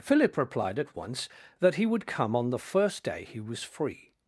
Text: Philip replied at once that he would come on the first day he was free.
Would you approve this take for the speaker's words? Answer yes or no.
yes